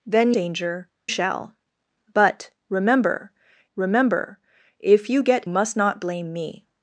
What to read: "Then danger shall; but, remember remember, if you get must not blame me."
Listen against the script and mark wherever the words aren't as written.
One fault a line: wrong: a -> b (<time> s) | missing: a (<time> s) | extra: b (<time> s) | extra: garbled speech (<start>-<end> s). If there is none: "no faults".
no faults